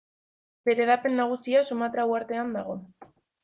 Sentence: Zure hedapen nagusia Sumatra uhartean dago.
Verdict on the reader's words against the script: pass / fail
fail